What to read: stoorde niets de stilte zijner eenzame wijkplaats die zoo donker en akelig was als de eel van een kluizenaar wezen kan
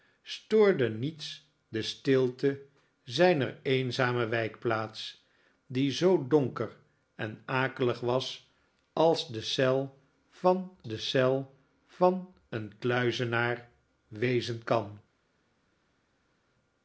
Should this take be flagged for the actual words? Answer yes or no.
yes